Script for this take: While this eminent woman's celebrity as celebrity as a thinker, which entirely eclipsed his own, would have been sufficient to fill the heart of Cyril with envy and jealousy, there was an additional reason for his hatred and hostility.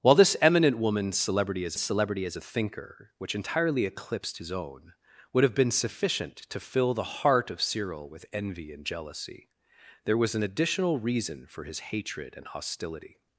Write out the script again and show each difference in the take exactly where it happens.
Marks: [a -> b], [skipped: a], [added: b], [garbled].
While this eminent woman's celebrity as celebrity as a thinker, which entirely eclipsed his own, would have been sufficient to fill the heart of Cyril with envy and jealousy, there was an additional reason for his hatred and hostility.